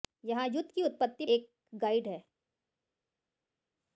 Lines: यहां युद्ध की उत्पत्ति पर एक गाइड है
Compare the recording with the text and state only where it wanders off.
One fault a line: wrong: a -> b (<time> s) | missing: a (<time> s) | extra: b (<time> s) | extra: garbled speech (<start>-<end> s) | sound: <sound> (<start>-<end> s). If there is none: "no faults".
missing: पर (1.2 s)